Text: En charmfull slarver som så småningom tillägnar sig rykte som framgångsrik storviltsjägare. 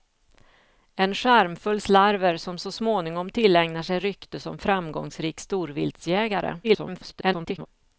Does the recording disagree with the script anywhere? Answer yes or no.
yes